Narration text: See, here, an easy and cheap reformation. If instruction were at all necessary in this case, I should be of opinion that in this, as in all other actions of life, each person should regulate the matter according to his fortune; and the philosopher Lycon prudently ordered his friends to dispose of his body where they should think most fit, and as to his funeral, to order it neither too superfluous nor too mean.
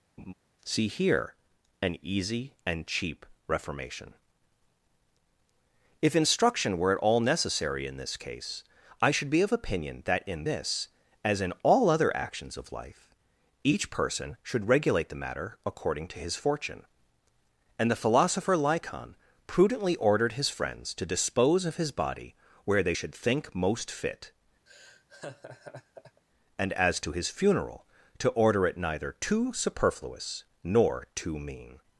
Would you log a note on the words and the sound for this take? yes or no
yes